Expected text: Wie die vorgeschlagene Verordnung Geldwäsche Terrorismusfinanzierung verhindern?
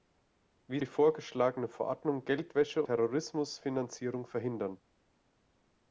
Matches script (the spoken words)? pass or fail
pass